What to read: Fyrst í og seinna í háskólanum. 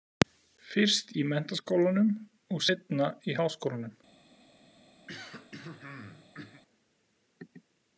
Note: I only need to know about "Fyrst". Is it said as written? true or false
true